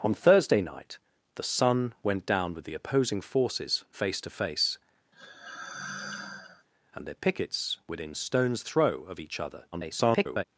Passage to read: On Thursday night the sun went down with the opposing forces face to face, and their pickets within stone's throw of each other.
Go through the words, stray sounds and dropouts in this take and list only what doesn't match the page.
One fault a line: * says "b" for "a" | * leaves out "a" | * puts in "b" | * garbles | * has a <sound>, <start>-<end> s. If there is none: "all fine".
* has a sigh, 5.1-6.7 s
* garbles